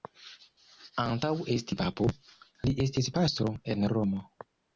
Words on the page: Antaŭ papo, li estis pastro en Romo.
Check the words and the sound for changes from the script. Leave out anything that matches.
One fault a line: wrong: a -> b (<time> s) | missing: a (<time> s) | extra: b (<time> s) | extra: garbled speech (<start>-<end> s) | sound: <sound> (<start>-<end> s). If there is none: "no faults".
extra: esti (1.6 s)